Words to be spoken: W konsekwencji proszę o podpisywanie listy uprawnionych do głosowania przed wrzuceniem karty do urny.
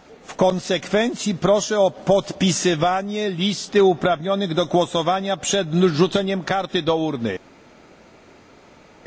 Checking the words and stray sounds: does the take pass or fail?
pass